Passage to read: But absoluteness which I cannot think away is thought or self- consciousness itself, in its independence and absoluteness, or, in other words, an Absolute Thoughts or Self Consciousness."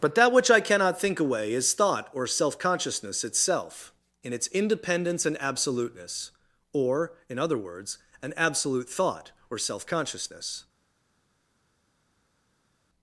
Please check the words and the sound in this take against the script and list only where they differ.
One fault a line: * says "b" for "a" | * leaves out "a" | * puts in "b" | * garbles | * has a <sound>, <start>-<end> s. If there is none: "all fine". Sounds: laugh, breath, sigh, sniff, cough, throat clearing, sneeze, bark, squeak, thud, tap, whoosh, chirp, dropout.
* says "that" for "absoluteness"
* says "Thought" for "Thoughts"